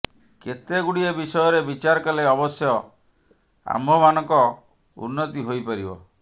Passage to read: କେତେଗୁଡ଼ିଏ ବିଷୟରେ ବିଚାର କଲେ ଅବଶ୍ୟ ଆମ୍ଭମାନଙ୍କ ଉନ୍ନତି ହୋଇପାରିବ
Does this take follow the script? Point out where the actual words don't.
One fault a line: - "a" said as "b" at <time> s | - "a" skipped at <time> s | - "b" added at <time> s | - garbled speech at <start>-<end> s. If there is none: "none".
none